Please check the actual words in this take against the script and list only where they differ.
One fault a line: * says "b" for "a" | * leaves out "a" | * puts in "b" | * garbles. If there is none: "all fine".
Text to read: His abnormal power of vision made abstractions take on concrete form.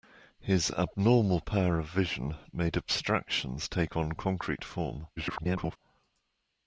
* garbles